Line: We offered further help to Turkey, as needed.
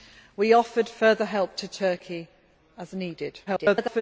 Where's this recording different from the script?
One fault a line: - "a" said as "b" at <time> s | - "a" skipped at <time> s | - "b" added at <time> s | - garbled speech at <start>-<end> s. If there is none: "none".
- garbled speech at 3.5-4.0 s